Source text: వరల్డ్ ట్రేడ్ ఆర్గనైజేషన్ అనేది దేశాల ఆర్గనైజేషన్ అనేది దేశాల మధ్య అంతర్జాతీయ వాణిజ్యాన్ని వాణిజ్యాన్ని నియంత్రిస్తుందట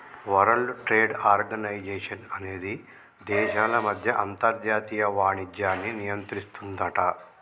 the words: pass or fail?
fail